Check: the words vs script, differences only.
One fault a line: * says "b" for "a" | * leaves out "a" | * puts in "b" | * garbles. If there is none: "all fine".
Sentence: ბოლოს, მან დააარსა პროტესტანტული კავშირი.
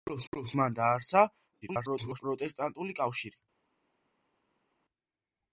* puts in "ბოლოს"
* garbles